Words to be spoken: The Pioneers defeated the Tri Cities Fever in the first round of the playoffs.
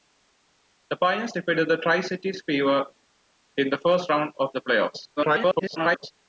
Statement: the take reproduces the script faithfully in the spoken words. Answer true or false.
false